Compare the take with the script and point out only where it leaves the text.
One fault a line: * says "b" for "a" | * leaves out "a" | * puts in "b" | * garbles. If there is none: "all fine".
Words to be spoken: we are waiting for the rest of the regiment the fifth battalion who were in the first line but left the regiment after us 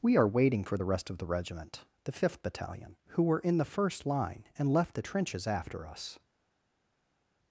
* says "and" for "but"
* says "trenches" for "regiment"